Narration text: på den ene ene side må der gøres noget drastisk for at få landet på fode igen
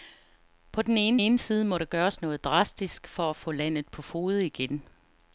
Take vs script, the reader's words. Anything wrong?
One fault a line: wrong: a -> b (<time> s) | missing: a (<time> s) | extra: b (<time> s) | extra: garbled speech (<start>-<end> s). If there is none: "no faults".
no faults